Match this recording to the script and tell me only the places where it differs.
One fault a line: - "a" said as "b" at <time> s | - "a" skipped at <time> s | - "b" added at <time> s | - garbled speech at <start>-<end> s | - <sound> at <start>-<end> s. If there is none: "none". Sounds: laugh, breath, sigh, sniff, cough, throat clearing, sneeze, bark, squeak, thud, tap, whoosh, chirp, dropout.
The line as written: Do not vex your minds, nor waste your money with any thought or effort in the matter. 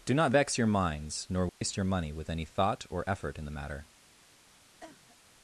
- dropout at 1.5-1.6 s
- cough at 4.8-5.2 s